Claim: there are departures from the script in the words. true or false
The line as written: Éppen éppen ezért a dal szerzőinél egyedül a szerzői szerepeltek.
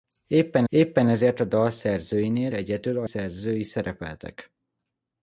false